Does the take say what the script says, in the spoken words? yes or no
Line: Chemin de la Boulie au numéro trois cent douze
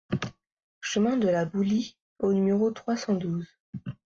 yes